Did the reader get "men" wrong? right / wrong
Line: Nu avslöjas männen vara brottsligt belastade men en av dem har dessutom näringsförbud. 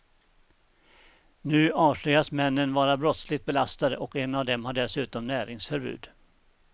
wrong